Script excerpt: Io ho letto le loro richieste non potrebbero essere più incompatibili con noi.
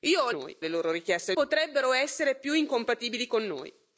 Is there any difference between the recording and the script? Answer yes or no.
yes